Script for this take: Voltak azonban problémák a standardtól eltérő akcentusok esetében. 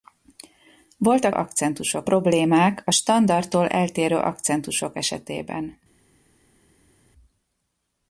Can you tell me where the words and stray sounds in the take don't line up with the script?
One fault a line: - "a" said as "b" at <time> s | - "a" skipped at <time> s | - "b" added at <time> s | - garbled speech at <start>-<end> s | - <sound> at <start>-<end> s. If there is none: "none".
- "azonban" said as "akcentusok" at 1.3 s